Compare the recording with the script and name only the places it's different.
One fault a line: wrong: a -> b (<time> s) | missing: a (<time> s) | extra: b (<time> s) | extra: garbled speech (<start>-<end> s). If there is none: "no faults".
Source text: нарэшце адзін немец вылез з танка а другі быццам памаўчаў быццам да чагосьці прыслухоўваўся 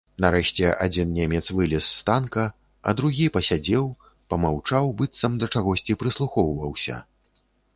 wrong: быццам -> пасядзеў (3.3 s)